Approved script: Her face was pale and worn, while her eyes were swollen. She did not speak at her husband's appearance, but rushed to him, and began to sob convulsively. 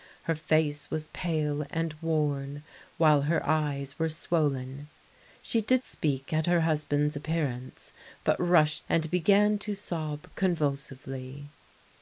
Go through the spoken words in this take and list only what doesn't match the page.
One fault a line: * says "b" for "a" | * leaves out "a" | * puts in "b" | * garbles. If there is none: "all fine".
* leaves out "not"
* leaves out "to him"